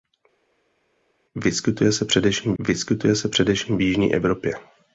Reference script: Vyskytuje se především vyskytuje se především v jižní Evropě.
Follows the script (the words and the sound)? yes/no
yes